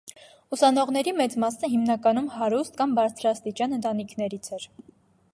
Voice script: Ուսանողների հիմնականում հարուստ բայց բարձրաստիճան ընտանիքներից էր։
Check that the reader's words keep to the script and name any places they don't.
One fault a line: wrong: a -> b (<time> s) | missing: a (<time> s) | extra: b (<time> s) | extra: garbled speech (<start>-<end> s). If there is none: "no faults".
extra: մեծ մասը (1.2 s)
wrong: բայց -> կամ (2.8 s)